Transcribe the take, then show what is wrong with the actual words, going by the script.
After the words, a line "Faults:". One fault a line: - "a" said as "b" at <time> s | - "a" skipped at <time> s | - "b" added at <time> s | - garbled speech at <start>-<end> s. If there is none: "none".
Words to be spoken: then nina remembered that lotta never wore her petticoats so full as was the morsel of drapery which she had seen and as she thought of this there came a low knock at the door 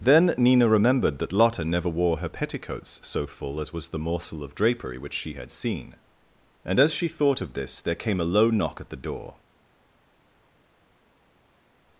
then nina remembered that lotta never wore her petticoats so full as was the morsel of drapery which she had seen and as she thought of this there came a low knock at the door
Faults:
none